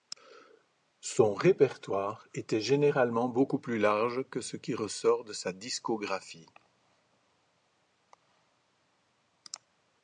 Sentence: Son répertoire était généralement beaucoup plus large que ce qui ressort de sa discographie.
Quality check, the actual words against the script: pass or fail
pass